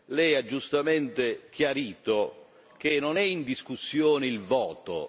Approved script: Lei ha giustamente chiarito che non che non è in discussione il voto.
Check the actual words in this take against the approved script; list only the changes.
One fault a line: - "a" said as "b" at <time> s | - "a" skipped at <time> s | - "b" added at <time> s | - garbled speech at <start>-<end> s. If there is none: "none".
- "che non" skipped at 3.2 s